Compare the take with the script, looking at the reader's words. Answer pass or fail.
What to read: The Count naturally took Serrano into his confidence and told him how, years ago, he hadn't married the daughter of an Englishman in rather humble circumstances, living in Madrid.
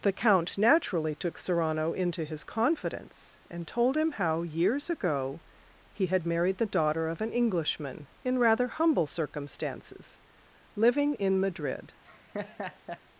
fail